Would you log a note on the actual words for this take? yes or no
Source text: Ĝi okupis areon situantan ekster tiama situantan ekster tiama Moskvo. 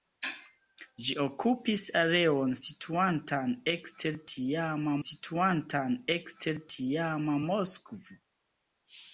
no